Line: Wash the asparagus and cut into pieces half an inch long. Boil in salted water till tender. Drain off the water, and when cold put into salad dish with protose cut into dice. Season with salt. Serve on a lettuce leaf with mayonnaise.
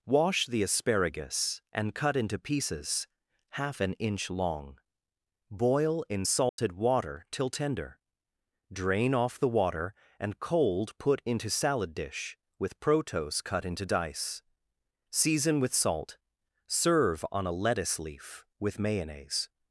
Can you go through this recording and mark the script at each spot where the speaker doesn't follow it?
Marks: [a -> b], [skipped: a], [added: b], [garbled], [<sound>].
Wash the asparagus and cut into pieces half an inch long. Boil in salted [dropout] water till tender. Drain off the water, and [skipped: when] cold put into salad dish with protose cut into dice. Season with salt. Serve on a lettuce leaf with mayonnaise.